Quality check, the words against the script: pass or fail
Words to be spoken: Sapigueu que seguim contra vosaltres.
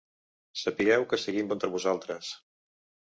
pass